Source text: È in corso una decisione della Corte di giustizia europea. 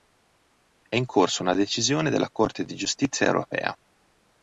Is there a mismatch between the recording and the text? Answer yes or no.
no